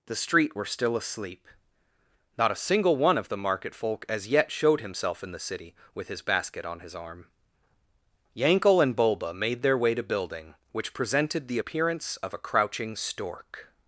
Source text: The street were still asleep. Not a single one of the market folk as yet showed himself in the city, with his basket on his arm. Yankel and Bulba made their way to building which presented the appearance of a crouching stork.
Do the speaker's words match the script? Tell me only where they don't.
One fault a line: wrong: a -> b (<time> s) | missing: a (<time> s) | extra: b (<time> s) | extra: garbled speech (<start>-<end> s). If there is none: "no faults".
no faults